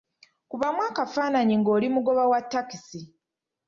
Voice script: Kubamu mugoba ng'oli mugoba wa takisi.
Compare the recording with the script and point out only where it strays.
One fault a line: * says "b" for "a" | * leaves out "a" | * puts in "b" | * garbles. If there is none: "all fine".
* says "akafaananyi" for "mugoba"